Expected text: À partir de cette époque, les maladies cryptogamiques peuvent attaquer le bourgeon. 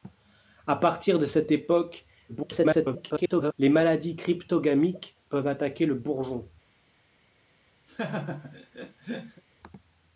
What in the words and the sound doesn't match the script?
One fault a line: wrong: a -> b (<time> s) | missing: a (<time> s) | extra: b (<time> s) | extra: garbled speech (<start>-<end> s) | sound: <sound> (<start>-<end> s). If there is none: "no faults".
extra: garbled speech (2.3-3.5 s)
sound: laugh (7.9-9.4 s)